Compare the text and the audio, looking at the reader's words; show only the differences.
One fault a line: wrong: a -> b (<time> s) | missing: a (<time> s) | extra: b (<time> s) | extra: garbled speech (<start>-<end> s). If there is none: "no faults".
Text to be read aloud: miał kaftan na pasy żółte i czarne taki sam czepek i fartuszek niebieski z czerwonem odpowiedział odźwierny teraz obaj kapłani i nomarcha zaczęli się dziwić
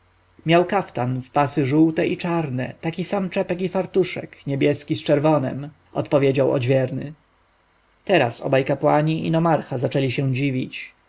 wrong: na -> w (1.2 s)